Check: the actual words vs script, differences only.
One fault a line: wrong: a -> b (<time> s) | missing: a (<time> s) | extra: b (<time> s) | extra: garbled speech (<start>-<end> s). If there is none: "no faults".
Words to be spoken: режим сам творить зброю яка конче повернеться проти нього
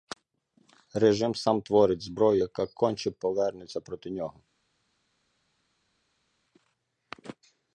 no faults